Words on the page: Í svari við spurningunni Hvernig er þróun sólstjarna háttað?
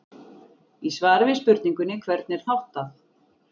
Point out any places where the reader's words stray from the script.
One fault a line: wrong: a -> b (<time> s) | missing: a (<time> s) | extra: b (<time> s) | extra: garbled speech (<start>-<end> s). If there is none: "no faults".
missing: þróun sólstjarna (2.5 s)